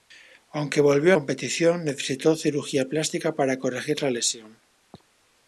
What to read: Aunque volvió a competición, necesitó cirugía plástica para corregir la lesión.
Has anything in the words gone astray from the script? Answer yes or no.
no